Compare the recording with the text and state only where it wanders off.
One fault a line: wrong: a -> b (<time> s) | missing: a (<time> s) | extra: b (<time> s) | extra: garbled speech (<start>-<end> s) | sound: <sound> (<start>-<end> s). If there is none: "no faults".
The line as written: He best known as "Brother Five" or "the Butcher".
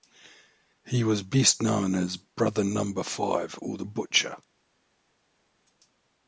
extra: was (1.0 s)
extra: Number (2.6 s)